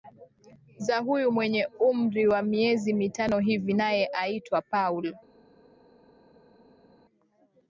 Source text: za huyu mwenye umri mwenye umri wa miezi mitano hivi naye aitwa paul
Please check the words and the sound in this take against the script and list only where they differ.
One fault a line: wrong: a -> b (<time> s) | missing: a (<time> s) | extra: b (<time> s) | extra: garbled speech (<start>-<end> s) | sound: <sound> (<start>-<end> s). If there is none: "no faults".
missing: mwenye umri (2.3 s)